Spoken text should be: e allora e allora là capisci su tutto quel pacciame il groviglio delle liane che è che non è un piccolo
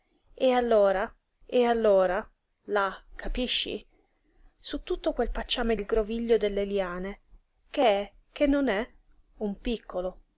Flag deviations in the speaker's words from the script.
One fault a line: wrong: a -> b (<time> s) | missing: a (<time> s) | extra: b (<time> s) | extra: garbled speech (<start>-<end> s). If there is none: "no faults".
no faults